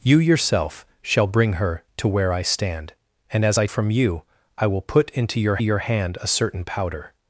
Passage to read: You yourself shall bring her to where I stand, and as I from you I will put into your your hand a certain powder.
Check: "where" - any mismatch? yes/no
no